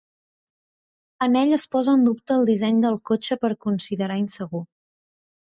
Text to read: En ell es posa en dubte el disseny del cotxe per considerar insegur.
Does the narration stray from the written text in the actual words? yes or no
no